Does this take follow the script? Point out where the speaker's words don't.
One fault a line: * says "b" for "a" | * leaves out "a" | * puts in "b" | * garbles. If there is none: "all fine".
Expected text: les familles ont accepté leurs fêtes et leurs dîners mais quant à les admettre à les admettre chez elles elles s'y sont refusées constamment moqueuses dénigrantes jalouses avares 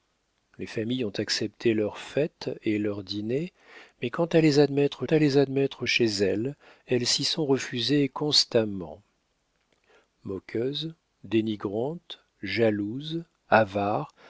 all fine